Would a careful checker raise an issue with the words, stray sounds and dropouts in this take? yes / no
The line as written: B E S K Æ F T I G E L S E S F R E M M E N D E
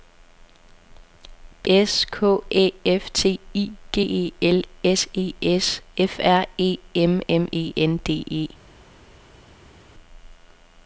yes